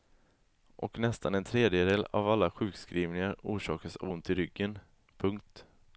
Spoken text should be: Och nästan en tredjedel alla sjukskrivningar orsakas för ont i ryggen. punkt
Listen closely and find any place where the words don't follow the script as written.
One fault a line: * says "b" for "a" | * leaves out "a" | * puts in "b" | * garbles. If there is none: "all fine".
* puts in "av"
* says "av" for "för"